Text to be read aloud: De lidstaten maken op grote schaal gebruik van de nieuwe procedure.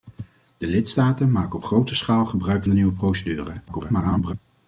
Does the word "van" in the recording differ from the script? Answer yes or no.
yes